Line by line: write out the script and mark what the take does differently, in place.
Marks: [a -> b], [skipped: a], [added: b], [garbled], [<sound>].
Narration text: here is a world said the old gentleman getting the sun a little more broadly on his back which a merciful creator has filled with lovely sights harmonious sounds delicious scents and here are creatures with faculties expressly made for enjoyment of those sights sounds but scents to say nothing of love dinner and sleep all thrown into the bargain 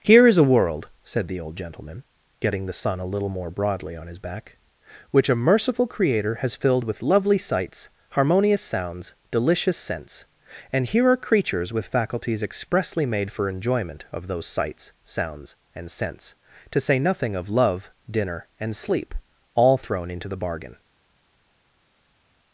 here is a world said the old gentleman getting the sun a little more broadly on his back which a merciful creator has filled with lovely sights harmonious sounds delicious scents and here are creatures with faculties expressly made for enjoyment of those sights sounds [but -> and] scents to say nothing of love dinner and sleep all thrown into the bargain